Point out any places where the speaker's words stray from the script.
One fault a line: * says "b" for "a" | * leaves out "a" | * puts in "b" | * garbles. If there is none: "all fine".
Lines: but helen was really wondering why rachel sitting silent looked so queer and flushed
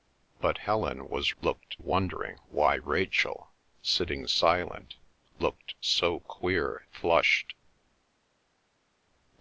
* says "looked" for "really"
* leaves out "and"